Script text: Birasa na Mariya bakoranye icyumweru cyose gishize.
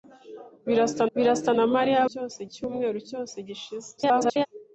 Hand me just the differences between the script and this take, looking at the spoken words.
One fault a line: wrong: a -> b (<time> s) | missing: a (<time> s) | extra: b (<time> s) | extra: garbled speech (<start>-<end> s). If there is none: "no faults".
extra: birasa (1.1 s)
wrong: bakoranye -> cyose (2.1 s)
extra: garbled speech (4.0-4.5 s)